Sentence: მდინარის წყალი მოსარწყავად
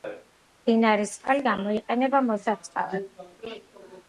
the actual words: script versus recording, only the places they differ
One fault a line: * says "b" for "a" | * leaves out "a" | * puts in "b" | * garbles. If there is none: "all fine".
* puts in "გამოიყენება"